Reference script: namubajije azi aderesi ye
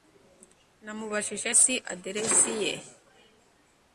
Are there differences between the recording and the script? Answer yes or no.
no